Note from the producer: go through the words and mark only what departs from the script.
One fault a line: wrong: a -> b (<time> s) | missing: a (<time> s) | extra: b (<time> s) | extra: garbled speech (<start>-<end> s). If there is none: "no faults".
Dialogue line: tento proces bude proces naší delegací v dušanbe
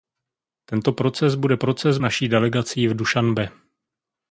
no faults